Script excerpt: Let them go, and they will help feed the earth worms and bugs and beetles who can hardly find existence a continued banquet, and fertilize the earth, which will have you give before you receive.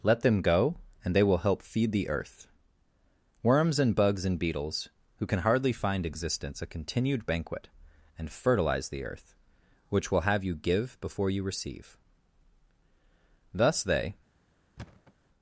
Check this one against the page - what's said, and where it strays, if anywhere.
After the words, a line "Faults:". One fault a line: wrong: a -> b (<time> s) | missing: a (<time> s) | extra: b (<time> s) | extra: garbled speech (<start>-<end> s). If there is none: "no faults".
Let them go, and they will help feed the earth worms and bugs and beetles who can hardly find existence a continued banquet, and fertilize the earth, which will have you give before you receive. Thus they
Faults:
extra: Thus they (13.5 s)